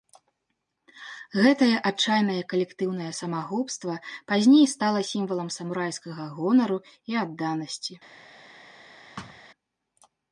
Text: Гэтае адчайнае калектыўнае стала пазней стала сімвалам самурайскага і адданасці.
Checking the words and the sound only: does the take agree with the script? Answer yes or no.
no